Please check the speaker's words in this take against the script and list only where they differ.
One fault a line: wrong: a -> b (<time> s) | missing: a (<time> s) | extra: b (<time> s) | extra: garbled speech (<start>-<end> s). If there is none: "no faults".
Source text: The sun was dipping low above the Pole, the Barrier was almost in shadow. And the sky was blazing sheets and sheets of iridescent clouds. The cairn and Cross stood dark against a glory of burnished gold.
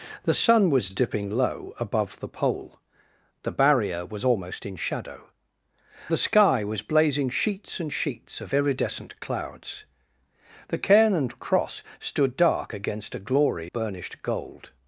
missing: And (5.3 s)
missing: of (13.7 s)